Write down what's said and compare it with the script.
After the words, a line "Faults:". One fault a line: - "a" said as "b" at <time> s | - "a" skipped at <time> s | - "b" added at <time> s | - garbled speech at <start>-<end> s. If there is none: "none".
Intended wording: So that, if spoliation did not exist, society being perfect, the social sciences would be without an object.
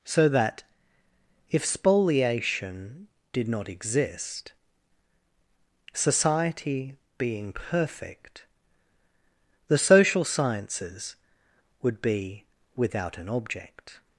So that, if spoliation did not exist, society being perfect, the social sciences would be without an object.
Faults:
none